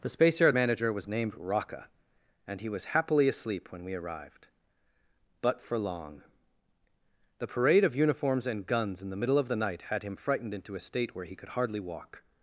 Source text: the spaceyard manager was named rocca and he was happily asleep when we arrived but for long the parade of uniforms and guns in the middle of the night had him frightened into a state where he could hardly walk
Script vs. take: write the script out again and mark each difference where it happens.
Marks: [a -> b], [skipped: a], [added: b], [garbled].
the spaceyard manager was named rocca and he was happily asleep when we arrived but for long the parade of uniforms and guns in the middle of the night had him frightened into a state where he could hardly walk